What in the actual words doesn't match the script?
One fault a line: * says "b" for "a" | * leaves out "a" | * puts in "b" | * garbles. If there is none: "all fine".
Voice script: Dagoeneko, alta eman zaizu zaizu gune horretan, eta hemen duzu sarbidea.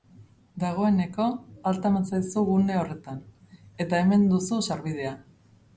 * leaves out "zaizu"